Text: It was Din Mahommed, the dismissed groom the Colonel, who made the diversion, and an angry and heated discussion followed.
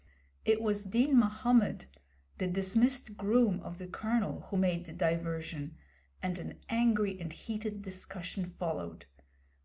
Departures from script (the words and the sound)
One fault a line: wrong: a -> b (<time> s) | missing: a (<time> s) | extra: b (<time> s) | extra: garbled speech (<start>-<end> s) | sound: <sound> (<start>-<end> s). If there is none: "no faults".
extra: of (3.6 s)